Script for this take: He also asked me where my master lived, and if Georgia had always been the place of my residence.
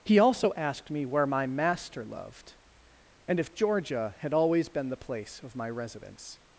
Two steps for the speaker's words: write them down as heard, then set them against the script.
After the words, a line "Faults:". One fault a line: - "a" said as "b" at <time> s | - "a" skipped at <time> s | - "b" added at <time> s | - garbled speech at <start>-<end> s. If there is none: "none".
He also asked me where my master loved, and if Georgia had always been the place of my residence.
Faults:
- "lived" said as "loved" at 2.1 s